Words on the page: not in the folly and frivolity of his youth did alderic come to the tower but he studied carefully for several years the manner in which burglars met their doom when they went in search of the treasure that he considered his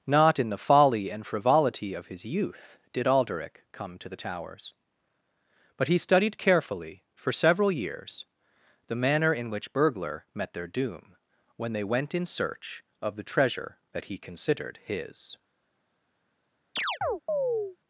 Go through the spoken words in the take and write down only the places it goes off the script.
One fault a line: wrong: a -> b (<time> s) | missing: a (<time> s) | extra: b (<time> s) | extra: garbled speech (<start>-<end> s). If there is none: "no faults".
wrong: tower -> towers (4.1 s)
wrong: burglars -> burglar (9.7 s)